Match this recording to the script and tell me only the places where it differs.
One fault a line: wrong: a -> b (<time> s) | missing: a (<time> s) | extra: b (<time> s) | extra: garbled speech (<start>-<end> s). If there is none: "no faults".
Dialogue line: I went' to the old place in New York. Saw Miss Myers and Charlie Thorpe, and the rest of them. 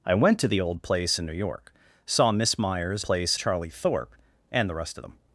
wrong: and -> place (3.0 s)